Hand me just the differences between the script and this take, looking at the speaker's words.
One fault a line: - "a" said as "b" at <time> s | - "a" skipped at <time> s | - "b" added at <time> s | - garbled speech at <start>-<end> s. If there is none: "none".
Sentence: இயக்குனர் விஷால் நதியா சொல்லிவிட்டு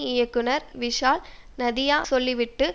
none